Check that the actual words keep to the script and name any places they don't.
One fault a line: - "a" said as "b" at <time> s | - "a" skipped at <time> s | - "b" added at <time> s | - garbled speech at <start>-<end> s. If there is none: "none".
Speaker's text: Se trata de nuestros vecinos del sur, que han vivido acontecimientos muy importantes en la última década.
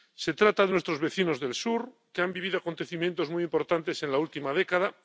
none